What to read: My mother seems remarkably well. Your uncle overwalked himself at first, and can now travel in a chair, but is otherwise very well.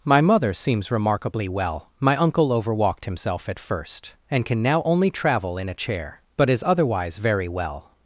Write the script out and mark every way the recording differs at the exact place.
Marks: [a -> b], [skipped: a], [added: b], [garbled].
My mother seems remarkably well. [Your -> My] uncle overwalked himself at first, and can now [added: only] travel in a chair, but is otherwise very well.